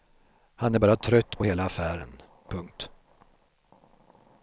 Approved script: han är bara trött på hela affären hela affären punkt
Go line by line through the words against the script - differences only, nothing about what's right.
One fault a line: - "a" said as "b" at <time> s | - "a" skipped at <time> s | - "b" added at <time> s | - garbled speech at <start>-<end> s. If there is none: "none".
- "hela affären" skipped at 2.2 s